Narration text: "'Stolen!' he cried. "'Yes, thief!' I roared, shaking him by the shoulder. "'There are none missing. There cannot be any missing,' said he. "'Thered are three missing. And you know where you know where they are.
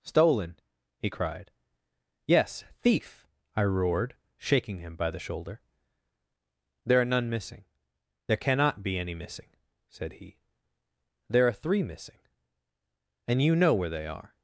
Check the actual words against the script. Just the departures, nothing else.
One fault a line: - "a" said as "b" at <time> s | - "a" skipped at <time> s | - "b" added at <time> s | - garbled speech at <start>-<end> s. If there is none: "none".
- "Thered" said as "There" at 11.3 s
- "you know where" skipped at 13.9 s